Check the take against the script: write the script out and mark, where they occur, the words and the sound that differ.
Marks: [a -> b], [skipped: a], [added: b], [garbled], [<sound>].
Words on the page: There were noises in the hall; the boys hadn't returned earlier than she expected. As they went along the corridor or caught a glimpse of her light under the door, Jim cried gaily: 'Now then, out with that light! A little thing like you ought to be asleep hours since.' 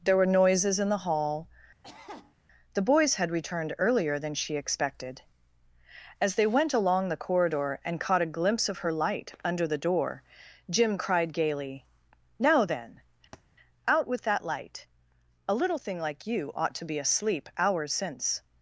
There were noises in the hall; [cough] the boys [hadn't -> had] returned earlier than she expected. As they went along the corridor [or -> and] caught a glimpse of her light under the door, Jim cried gaily: 'Now then, [thud] out with that light! A little thing like you ought to be asleep hours since.'